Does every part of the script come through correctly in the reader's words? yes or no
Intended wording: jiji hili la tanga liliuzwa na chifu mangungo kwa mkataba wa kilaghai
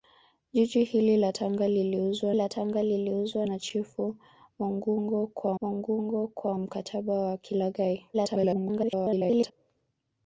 no